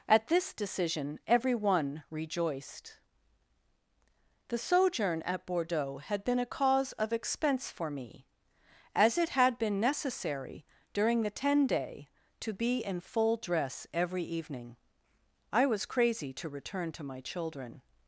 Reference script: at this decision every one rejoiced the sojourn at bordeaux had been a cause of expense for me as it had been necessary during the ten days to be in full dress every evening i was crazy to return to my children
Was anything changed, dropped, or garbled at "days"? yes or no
yes